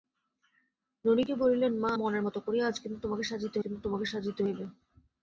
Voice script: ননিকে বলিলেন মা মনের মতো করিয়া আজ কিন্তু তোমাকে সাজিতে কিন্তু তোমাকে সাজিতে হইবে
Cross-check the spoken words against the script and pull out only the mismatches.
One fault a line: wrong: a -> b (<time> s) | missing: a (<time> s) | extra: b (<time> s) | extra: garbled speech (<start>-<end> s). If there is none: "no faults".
no faults